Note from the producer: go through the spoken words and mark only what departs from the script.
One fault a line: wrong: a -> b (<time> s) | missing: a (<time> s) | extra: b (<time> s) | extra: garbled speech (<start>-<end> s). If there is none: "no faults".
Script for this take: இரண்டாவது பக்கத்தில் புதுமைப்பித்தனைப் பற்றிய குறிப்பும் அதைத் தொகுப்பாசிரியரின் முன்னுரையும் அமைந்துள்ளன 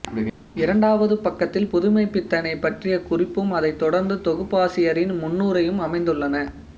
extra: தொடர்ந்து (3.8 s)